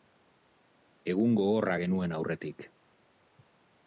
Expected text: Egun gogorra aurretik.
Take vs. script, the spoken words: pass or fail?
fail